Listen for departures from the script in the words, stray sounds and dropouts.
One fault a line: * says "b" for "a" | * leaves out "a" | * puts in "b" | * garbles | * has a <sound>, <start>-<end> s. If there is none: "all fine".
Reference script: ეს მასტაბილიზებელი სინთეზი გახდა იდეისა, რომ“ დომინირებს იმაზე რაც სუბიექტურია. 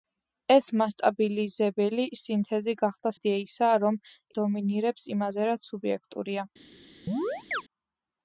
* has a chirp, 7.1-7.6 s